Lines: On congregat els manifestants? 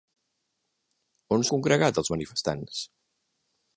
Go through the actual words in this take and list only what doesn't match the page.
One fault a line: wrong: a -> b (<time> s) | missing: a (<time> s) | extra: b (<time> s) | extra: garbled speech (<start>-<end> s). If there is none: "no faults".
no faults